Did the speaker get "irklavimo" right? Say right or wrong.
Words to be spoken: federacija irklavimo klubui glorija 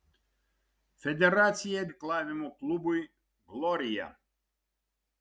right